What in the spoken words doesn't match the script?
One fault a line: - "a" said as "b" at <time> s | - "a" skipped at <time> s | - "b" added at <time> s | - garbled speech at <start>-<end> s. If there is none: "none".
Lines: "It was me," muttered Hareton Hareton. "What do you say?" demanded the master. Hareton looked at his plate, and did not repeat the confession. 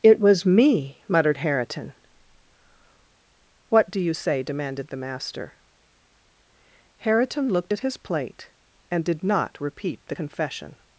- "Hareton" skipped at 1.9 s